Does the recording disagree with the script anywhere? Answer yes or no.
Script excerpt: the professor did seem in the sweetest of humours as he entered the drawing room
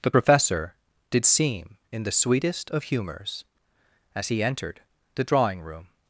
no